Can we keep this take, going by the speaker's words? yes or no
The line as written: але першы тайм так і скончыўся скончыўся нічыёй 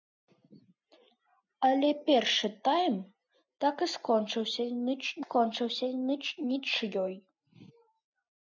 yes